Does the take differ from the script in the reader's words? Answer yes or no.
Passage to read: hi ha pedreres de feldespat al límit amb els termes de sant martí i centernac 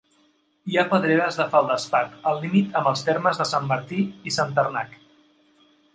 no